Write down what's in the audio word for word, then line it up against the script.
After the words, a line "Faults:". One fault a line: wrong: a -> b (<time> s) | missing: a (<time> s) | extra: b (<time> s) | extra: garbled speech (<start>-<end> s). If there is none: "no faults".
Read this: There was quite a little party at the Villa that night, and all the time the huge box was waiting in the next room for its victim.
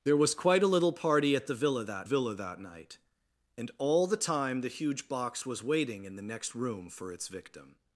There was quite a little party at the Villa that Villa that night, and all the time the huge box was waiting in the next room for its victim.
Faults:
extra: Villa that (2.0 s)